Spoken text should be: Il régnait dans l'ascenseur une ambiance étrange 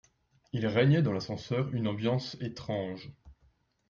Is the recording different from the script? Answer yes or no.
no